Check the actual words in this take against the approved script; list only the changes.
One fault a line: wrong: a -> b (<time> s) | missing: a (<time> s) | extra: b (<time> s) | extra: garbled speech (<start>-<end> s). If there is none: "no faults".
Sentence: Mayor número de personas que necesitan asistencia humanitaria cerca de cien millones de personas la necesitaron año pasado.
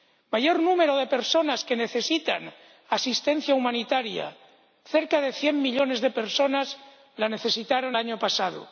no faults